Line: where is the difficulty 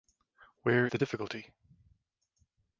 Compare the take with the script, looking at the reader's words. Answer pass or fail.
fail